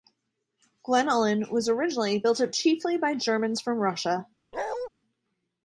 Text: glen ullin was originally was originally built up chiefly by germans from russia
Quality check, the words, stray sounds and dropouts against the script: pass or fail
fail